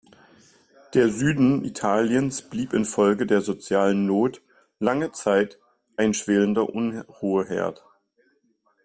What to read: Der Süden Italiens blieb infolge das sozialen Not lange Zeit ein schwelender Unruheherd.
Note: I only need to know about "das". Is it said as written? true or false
false